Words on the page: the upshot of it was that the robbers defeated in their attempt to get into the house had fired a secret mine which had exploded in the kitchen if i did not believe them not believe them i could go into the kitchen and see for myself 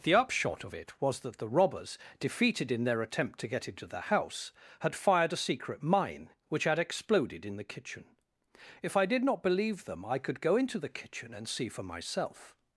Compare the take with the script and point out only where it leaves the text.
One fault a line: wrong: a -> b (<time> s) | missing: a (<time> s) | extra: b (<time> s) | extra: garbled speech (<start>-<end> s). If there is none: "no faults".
missing: not believe them (10.0 s)